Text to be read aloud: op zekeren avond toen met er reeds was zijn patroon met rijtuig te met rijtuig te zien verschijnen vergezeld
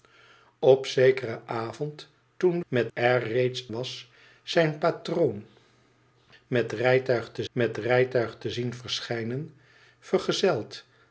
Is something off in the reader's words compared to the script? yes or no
no